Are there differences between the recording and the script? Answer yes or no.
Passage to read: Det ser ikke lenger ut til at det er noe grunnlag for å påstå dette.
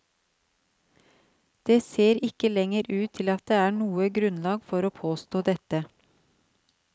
no